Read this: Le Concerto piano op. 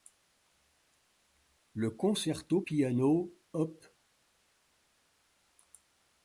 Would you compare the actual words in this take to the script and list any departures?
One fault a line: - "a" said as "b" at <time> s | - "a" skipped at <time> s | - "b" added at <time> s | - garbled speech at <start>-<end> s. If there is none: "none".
none